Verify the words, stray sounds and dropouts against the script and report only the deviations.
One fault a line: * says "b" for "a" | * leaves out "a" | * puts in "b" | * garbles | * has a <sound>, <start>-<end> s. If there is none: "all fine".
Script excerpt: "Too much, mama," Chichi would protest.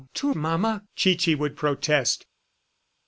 * leaves out "much"